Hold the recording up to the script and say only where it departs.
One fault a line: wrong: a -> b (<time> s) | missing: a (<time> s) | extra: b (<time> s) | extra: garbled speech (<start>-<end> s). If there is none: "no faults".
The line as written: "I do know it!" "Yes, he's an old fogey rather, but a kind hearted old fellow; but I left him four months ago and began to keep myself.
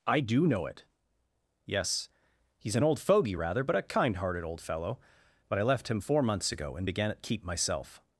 wrong: to -> at (7.1 s)